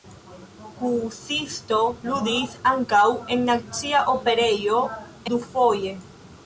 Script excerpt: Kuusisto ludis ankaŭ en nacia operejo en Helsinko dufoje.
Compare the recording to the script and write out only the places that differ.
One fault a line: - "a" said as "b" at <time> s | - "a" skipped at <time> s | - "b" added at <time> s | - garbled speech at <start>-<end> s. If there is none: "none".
- "en Helsinko" skipped at 4.8 s